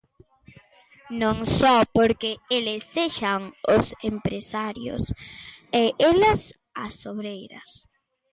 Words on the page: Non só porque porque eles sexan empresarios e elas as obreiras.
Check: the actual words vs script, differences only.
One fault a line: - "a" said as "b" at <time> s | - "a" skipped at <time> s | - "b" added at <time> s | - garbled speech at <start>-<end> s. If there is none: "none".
- "porque" skipped at 2.3 s
- "os" added at 3.8 s